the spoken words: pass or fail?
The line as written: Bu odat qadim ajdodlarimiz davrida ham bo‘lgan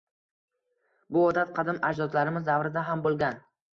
pass